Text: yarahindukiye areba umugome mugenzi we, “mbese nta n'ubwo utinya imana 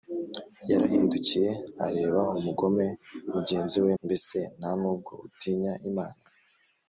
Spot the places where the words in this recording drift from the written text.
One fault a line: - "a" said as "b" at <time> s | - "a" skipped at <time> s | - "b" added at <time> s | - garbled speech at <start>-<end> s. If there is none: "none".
none